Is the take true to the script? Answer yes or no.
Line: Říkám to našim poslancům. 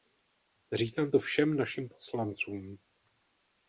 no